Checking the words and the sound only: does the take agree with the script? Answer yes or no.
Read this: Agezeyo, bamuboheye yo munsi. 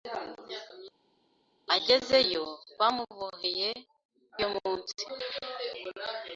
yes